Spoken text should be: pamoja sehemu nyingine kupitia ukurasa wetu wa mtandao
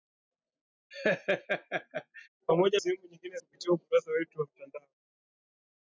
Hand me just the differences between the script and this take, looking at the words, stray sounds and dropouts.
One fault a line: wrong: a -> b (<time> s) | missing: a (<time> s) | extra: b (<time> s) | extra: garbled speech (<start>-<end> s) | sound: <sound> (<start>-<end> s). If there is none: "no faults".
sound: laugh (0.9-2.3 s)